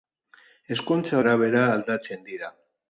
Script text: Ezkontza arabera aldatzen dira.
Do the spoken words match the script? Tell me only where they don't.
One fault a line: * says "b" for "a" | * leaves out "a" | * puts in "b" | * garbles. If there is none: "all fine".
all fine